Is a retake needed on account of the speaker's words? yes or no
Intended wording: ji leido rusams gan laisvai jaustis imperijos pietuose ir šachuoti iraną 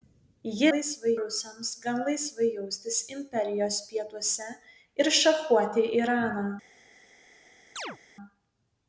yes